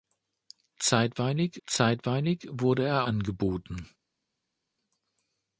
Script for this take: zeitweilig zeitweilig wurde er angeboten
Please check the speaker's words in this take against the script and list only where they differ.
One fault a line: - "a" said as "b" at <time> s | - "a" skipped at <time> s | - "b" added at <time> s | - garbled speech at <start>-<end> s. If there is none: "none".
none